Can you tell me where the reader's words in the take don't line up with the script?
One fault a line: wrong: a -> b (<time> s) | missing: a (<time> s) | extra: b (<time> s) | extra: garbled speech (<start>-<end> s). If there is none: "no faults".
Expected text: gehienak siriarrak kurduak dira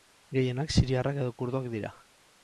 extra: edo (1.2 s)